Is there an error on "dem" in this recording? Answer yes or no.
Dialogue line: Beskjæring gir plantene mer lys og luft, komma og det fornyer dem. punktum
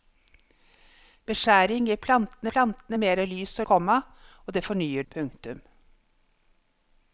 yes